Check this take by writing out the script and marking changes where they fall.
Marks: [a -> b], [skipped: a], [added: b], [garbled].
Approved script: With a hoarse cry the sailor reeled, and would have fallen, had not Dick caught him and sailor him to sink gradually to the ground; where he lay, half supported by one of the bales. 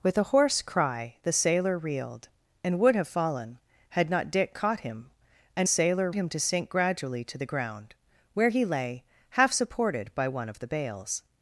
With a hoarse cry the sailor reeled, and would have fallen, had not Dick caught him and sailor him to sink gradually to the ground; where he lay, half supported by one of the bales.